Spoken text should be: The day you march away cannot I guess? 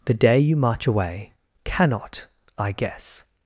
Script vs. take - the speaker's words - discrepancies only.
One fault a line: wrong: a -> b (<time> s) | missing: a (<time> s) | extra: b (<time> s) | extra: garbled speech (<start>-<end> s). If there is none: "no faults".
no faults